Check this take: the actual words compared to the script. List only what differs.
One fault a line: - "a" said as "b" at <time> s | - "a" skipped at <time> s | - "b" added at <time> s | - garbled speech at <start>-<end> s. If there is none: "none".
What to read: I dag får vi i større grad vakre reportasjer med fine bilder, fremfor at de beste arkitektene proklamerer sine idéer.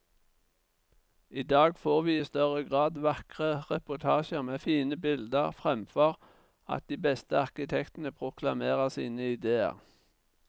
none